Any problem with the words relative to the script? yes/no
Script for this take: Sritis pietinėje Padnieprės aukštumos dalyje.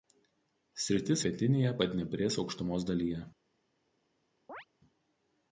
no